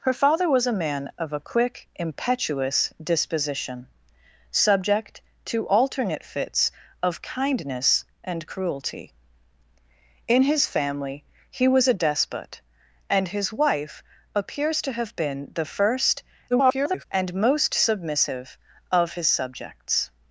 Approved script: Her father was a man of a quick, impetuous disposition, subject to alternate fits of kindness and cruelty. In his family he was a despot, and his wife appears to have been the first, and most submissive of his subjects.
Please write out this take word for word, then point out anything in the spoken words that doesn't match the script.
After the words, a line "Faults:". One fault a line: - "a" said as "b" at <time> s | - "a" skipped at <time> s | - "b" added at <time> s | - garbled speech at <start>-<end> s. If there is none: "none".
Her father was a man of a quick, impetuous disposition, subject to alternate fits of kindness and cruelty. In his family he was a despot, and his wife appears to have been the first, [garbled] and most submissive of his subjects.
Faults:
- garbled speech at 16.5-17.0 s